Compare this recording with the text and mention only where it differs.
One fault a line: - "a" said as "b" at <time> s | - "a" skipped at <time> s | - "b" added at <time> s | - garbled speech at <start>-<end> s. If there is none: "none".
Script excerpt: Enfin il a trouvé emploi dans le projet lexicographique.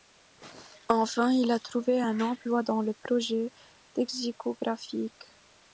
- "un" added at 2.0 s